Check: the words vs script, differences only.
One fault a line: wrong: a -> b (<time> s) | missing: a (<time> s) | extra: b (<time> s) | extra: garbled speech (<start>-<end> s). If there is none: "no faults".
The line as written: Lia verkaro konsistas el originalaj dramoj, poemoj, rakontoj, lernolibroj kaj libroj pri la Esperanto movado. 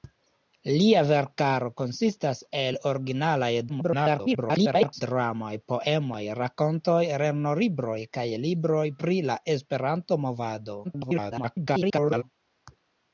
extra: garbled speech (3.7-5.0 s)
extra: garbled speech (10.8-12.2 s)